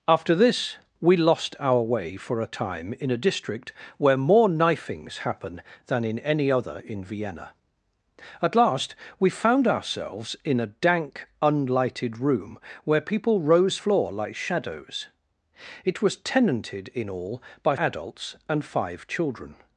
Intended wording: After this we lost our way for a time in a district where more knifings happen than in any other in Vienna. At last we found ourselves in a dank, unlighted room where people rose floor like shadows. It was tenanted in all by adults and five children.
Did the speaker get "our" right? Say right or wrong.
right